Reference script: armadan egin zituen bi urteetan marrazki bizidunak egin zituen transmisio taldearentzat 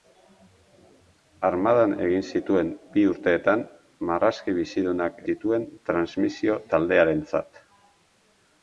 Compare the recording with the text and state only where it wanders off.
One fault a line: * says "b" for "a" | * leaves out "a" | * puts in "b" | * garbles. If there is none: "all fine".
* leaves out "egin"